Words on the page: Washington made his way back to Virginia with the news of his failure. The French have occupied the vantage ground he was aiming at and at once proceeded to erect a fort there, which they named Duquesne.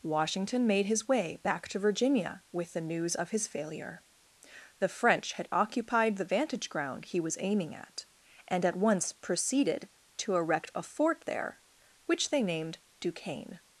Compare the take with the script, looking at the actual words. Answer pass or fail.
fail